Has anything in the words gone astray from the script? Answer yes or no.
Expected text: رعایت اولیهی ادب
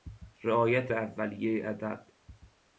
no